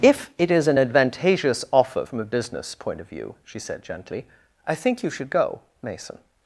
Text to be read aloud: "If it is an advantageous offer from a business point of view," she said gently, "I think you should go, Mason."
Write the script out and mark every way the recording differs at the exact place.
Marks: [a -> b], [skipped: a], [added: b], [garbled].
"If it is an advantageous offer from a business point of view," she said gently, "I think you should go, Mason."